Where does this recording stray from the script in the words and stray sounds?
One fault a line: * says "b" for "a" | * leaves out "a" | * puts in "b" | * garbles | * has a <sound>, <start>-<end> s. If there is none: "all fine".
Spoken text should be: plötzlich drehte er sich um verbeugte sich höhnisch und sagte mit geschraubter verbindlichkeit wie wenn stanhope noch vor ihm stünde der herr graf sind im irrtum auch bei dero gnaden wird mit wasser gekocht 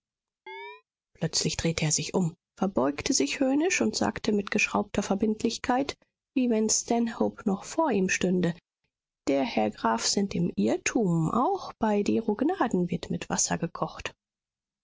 * has a chirp, 0.5-0.8 s